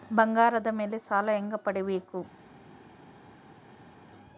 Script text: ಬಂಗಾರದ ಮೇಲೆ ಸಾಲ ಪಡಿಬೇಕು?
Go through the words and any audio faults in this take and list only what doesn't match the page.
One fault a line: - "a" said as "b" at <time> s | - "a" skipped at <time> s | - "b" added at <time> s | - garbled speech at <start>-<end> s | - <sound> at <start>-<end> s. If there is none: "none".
- "ಹೆಂಗ" added at 1.3 s